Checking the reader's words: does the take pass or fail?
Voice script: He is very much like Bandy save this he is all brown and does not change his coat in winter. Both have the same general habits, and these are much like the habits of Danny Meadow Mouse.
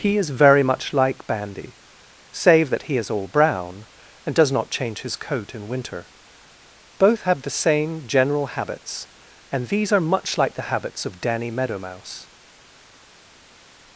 fail